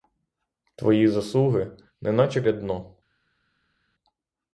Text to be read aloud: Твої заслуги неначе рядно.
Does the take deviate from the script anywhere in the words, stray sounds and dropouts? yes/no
no